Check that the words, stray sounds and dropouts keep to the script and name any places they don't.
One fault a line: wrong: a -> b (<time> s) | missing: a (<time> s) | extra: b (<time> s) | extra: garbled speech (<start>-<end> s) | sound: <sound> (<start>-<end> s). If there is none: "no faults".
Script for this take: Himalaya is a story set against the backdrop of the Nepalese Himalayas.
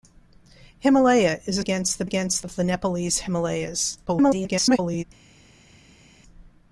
missing: story set (1.6 s)
wrong: backdrop -> against (2.0 s)
extra: garbled speech (4.1-5.0 s)